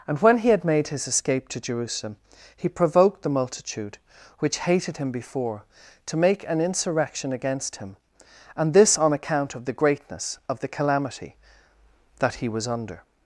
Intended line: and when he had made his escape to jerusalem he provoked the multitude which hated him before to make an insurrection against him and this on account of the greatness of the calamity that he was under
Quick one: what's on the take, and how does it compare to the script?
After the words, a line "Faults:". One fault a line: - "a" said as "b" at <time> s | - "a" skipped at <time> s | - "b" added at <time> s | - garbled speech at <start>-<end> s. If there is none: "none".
and when he had made his escape to jerusalem he provoked the multitude which hated him before to make an insurrection against him and this on account of the greatness of the calamity that he was under
Faults:
none